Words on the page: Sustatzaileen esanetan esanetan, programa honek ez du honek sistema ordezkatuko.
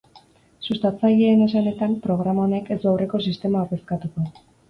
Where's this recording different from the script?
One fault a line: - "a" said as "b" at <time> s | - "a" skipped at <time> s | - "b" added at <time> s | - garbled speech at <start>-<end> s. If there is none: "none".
- "esanetan" skipped at 1.9 s
- "honek" said as "aurreko" at 2.9 s